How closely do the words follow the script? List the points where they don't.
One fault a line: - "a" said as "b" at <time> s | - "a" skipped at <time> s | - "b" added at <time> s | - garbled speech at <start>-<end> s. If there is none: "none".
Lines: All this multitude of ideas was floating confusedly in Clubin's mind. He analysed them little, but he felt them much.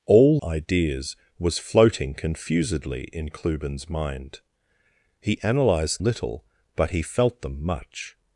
- "this multitude of" skipped at 0.4 s
- "them" skipped at 6.0 s